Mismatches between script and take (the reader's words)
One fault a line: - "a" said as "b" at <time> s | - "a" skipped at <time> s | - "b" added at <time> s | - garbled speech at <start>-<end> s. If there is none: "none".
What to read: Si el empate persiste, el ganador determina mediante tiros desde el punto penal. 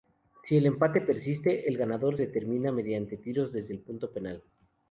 none